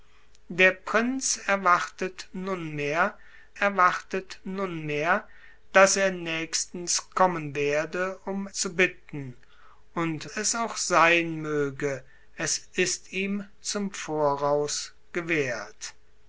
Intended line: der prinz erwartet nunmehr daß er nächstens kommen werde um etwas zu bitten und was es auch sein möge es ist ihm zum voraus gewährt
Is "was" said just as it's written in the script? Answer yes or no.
no